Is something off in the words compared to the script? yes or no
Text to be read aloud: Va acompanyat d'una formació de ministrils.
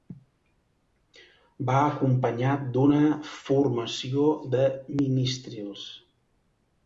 no